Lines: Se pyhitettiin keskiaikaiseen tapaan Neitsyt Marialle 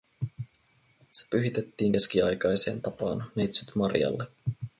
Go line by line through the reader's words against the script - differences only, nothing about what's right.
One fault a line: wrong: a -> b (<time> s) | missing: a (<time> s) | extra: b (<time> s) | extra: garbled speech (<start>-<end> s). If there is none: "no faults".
no faults